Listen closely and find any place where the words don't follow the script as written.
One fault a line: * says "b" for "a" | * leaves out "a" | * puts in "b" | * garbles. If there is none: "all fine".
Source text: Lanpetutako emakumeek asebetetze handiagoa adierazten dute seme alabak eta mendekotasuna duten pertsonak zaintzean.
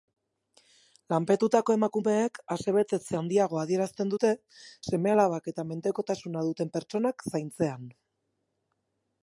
all fine